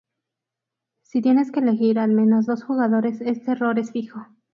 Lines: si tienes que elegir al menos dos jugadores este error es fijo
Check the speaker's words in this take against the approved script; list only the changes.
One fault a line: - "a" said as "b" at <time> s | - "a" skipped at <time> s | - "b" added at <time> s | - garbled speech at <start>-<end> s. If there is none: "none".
none